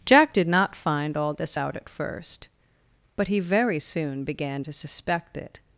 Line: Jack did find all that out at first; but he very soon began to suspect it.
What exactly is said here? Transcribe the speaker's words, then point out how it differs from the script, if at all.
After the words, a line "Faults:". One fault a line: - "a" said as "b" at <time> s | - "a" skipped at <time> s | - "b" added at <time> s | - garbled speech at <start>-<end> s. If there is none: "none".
Jack did not find all this out at first; but he very soon began to suspect it.
Faults:
- "not" added at 0.5 s
- "that" said as "this" at 1.3 s